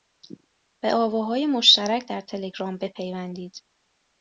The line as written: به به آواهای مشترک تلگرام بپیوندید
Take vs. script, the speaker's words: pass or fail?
fail